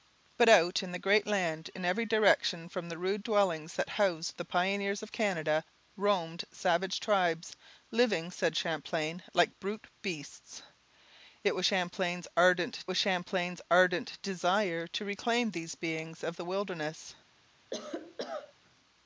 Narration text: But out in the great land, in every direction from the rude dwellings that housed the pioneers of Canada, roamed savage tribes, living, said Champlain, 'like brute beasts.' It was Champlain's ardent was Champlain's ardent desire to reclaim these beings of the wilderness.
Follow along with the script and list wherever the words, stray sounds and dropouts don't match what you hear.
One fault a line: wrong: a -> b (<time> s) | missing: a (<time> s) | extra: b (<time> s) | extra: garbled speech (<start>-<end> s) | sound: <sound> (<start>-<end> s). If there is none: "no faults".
sound: cough (17.7-18.5 s)